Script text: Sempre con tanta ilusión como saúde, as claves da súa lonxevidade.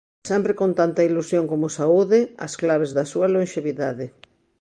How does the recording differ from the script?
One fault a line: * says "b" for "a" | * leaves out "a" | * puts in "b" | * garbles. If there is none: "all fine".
all fine